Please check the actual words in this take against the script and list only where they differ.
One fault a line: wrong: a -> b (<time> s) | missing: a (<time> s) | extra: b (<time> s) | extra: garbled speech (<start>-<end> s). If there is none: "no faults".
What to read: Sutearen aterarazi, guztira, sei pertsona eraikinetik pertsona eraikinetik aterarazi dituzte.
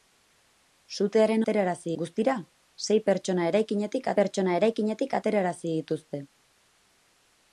no faults